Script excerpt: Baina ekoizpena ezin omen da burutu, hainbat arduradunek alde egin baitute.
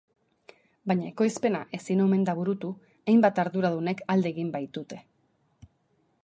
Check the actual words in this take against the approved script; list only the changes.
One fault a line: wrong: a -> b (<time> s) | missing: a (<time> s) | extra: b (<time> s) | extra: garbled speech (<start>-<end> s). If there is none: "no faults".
no faults